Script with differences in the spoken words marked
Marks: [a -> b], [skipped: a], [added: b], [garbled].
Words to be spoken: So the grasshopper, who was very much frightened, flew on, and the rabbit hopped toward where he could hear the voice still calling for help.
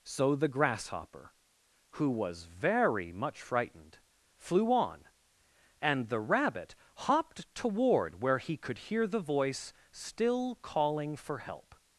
So the grasshopper, who was very much frightened, flew on, and the rabbit hopped toward where he could hear the voice still calling for help.